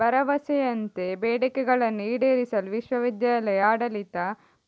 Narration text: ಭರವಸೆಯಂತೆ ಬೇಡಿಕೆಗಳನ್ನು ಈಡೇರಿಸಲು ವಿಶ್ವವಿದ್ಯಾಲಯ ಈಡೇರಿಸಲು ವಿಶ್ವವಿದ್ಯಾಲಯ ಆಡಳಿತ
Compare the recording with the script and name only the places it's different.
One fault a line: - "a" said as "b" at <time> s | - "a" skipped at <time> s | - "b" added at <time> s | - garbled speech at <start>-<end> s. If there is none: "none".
- "ಈಡೇರಿಸಲು ವಿಶ್ವವಿದ್ಯಾಲಯ" skipped at 3.6 s